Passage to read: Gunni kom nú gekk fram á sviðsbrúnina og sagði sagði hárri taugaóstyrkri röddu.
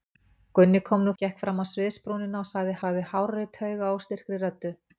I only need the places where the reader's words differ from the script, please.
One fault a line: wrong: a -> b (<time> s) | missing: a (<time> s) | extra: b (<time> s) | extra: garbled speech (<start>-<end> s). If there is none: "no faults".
no faults